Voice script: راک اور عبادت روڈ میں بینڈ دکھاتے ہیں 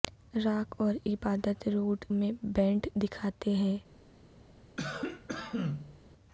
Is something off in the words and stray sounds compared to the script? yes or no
yes